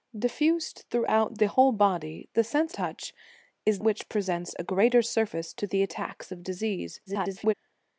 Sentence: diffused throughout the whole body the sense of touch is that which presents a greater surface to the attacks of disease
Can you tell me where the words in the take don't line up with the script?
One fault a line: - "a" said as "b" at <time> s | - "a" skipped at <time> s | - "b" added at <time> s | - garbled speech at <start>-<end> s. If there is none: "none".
- "of" skipped at 2.7 s
- "that" skipped at 3.8 s
- garbled speech at 7.1-7.5 s